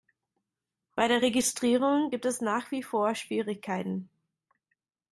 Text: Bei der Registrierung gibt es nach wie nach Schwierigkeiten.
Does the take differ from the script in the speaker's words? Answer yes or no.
yes